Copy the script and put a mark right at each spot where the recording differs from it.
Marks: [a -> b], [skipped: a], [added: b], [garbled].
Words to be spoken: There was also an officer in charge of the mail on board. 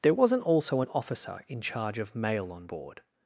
There [was -> wasn't] also an officer in charge of [skipped: the] mail on board.